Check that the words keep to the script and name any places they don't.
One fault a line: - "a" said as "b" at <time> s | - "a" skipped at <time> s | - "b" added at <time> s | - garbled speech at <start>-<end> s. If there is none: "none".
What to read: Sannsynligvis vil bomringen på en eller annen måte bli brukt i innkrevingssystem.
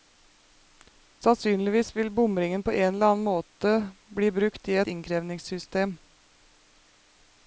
none